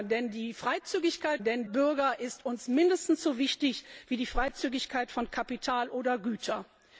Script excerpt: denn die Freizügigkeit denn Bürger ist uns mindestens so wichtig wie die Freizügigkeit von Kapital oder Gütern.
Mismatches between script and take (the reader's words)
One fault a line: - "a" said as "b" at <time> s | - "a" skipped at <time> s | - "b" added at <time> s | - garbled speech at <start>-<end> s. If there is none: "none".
none